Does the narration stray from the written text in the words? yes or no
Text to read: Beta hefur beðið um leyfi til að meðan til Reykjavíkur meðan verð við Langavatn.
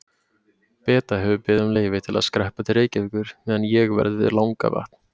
yes